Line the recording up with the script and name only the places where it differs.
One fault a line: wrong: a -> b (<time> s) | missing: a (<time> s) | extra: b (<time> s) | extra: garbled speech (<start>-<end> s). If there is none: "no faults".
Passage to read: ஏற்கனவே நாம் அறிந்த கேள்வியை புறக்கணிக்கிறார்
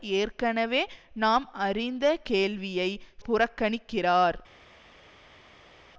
no faults